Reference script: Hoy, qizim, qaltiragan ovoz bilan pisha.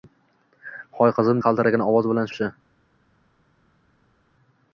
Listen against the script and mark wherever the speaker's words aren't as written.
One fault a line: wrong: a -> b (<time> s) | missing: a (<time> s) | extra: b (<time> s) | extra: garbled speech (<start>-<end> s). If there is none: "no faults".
no faults